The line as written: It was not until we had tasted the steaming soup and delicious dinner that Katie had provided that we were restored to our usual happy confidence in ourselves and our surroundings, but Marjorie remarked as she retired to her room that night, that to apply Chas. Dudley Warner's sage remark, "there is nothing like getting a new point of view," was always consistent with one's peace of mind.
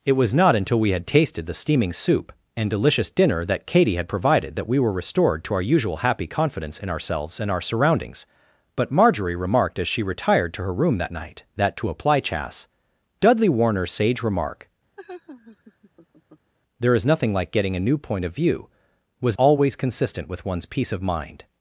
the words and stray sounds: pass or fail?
fail